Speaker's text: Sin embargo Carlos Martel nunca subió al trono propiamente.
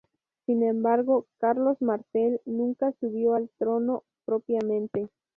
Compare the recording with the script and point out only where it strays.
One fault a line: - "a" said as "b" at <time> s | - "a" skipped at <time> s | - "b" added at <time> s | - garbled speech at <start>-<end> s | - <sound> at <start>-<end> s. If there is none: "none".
none